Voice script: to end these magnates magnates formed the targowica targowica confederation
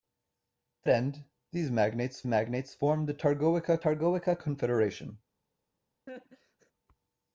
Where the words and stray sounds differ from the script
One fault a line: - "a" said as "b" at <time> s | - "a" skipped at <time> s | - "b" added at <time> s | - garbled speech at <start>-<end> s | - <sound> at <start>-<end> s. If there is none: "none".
- laugh at 6.1-6.7 s